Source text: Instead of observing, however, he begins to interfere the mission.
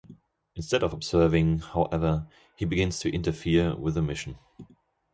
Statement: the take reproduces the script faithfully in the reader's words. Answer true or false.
false